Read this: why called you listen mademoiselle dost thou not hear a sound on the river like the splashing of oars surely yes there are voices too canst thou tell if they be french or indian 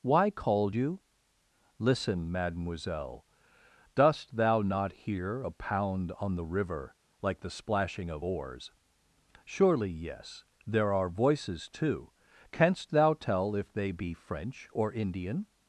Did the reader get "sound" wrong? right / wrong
wrong